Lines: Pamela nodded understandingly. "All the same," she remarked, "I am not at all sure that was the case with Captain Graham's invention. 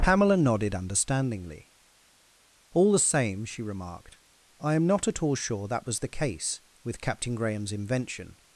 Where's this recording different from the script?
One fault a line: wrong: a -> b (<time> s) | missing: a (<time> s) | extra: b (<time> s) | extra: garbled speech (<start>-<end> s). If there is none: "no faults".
no faults